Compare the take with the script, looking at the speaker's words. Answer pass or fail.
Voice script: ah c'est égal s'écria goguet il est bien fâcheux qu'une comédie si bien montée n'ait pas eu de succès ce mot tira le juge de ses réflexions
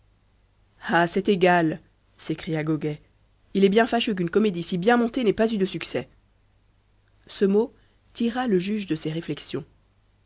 pass